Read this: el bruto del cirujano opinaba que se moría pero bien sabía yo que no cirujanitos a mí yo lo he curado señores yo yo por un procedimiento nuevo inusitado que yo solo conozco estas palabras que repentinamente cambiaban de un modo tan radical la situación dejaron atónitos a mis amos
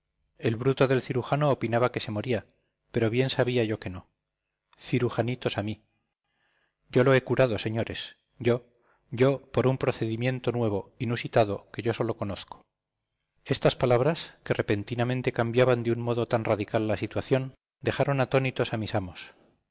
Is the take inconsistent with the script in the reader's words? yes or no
no